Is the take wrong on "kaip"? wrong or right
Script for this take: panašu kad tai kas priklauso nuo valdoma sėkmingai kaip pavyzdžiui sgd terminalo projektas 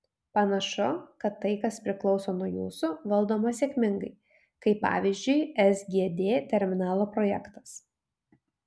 right